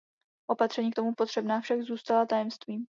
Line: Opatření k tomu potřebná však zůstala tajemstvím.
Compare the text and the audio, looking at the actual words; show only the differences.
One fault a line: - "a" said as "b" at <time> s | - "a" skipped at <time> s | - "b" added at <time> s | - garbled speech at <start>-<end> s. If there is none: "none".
none